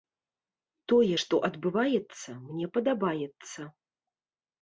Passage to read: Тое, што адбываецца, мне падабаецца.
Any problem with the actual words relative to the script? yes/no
no